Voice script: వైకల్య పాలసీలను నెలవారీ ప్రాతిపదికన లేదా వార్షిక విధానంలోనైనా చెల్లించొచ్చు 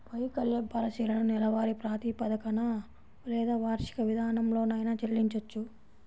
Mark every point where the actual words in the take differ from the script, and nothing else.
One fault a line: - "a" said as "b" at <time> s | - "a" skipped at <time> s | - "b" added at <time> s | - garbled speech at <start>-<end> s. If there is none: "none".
none